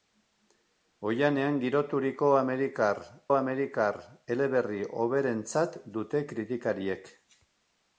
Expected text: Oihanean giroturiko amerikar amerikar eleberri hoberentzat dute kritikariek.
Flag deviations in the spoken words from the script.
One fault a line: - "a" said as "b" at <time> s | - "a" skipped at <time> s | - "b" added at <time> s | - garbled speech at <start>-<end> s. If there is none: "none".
none